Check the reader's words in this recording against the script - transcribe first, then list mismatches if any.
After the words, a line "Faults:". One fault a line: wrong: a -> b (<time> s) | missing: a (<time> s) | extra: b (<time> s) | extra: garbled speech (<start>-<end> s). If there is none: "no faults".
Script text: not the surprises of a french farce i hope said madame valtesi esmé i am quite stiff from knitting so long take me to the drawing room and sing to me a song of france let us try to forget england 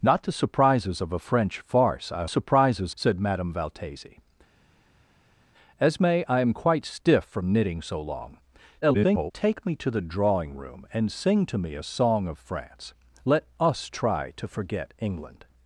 not the surprises of a french farce i surprises said madame valtesi esmé i am quite stiff from knitting so long [garbled] take me to the drawing room and sing to me a song of france let us try to forget england
Faults:
wrong: hope -> surprises (2.2 s)
extra: garbled speech (8.8-9.3 s)